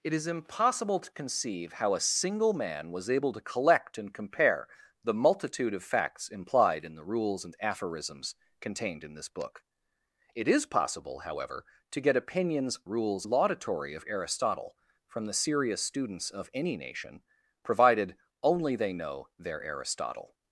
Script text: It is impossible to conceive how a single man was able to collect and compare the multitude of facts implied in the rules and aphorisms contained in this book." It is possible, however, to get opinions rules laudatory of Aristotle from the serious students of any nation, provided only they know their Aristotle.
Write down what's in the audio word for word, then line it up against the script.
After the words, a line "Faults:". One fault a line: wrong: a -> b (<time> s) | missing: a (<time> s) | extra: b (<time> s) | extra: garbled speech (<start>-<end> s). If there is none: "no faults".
It is impossible to conceive how a single man was able to collect and compare the multitude of facts implied in the rules and aphorisms contained in this book." It is possible, however, to get opinions rules laudatory of Aristotle from the serious students of any nation, provided only they know their Aristotle.
Faults:
no faults